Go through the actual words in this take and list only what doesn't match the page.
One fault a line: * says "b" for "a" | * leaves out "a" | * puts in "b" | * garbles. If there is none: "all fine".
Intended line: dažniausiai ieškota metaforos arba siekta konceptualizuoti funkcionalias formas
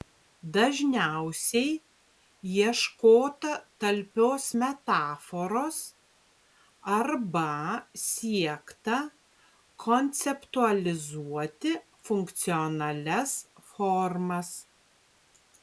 * puts in "talpios"